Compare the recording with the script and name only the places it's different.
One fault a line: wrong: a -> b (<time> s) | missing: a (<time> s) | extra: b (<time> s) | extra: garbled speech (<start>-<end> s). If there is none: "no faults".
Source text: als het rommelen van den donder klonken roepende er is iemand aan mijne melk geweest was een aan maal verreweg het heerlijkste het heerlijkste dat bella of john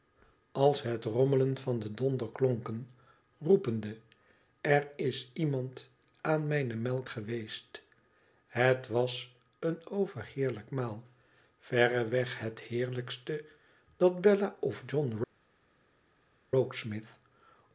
extra: het (8.5 s)
wrong: aan -> overheerlijk (9.9 s)
missing: het heerlijkste (13.4 s)